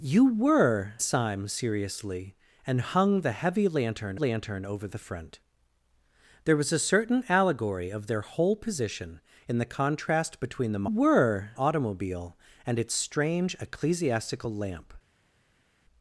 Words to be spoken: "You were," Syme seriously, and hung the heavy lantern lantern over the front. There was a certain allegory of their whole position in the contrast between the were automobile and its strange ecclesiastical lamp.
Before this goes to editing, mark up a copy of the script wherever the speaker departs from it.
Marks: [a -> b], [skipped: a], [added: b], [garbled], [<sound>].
"You were," Syme seriously, and hung the heavy lantern lantern over the front. There was a certain allegory of their whole position in the contrast between the were automobile and its strange ecclesiastical lamp.